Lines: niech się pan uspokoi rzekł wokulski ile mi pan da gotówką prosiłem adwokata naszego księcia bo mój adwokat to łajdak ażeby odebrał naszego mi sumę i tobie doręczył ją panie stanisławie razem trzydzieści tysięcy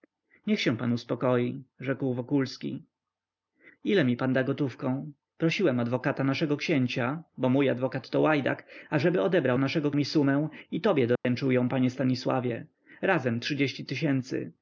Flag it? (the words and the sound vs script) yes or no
yes